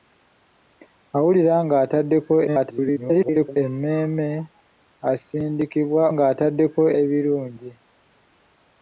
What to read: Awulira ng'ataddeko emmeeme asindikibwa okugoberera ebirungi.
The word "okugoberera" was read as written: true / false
false